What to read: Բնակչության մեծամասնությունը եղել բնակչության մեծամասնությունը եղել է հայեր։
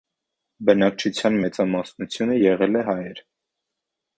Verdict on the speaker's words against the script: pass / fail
fail